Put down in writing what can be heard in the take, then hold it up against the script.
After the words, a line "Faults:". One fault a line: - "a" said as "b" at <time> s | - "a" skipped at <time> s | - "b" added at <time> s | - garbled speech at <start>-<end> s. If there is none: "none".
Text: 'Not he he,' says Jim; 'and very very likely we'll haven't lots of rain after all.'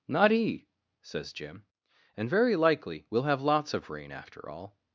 'Not he,' says Jim; 'and very likely we'll have lots of rain after all.'
Faults:
- "he" skipped at 0.7 s
- "very" skipped at 2.6 s
- "haven't" said as "have" at 3.2 s